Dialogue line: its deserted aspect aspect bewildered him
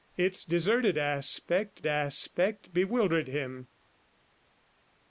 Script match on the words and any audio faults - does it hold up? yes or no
yes